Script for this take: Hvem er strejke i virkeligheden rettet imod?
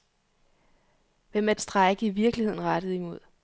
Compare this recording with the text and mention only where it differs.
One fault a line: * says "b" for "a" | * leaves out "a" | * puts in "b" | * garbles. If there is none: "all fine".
all fine